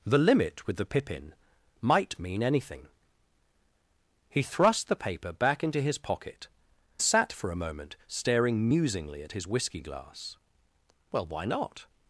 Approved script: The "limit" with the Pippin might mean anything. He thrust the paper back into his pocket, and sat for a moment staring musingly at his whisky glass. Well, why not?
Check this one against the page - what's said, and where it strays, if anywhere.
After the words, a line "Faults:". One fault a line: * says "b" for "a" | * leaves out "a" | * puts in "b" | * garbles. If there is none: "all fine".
The "limit" with the Pippin might mean anything. He thrust the paper back into his pocket, sat for a moment staring musingly at his whisky glass. Well, why not?
Faults:
* leaves out "and"